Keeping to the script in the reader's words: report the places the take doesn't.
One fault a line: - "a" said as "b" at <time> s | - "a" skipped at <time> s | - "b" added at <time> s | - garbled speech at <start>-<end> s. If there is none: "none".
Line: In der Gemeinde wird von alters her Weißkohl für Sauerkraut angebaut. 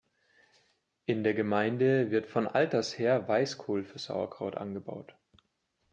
none